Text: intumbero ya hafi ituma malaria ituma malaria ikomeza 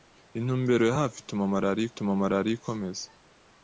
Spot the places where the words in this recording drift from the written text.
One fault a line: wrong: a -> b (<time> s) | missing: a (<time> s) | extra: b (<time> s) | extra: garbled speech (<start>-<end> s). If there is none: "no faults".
no faults